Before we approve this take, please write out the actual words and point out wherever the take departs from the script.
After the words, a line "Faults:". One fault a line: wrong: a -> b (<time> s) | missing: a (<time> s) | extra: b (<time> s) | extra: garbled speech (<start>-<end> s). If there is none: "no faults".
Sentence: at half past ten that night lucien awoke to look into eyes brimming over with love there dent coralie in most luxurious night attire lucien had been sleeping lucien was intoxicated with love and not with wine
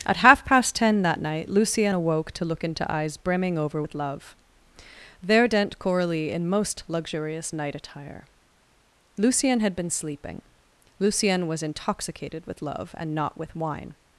at half past ten that night lucien awoke to look into eyes brimming over with love there dent coralie in most luxurious night attire lucien had been sleeping lucien was intoxicated with love and not with wine
Faults:
no faults